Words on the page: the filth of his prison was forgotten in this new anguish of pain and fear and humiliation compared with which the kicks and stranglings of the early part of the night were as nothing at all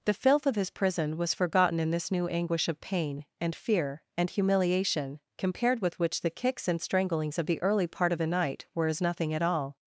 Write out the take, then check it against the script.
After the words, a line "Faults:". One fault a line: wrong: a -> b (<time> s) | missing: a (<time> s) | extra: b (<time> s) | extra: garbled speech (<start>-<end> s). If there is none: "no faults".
the filth of his prison was forgotten in this new anguish of pain and fear and humiliation compared with which the kicks and stranglings of the early part of the night were as nothing at all
Faults:
no faults